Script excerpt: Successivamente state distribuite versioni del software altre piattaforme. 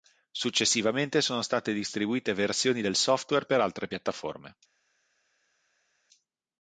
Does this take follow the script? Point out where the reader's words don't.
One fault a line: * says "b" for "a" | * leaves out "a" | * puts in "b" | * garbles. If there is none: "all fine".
* puts in "sono"
* puts in "per"